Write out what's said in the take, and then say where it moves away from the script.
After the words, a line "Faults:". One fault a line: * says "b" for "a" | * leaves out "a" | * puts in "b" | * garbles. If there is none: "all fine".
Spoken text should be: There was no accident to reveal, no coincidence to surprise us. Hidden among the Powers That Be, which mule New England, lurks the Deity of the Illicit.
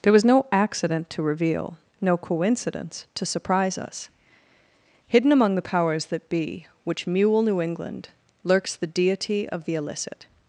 There was no accident to reveal, no coincidence to surprise us. Hidden among the Powers That Be, which mule New England, lurks the Deity of the Illicit.
Faults:
all fine